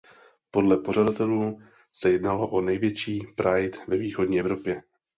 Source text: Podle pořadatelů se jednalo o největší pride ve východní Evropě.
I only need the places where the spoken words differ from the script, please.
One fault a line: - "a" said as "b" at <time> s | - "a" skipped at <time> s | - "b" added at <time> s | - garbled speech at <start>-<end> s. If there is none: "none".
none